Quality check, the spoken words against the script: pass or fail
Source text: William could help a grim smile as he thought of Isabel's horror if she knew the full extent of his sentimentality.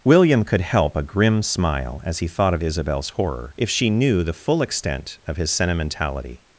pass